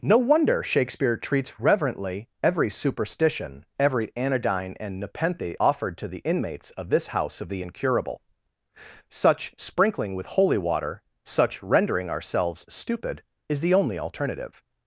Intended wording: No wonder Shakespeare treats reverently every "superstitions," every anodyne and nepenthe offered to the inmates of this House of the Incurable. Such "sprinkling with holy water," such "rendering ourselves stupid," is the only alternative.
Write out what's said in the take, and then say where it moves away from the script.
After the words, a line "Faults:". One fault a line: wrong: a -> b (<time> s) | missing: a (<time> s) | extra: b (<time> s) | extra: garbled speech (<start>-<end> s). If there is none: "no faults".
No wonder Shakespeare treats reverently every "superstition," every anodyne and nepenthe offered to the inmates of this House of the Incurable. Such "sprinkling with holy water," such "rendering ourselves stupid," is the only alternative.
Faults:
wrong: superstitions -> superstition (2.7 s)